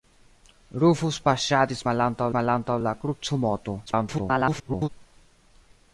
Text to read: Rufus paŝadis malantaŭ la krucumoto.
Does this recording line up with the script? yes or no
no